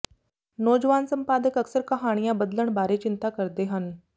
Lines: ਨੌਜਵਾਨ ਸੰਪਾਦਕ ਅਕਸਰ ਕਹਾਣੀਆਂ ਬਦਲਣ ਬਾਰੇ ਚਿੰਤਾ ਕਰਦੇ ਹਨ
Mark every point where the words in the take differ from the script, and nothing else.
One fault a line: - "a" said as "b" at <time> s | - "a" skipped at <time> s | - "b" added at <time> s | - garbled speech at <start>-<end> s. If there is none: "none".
none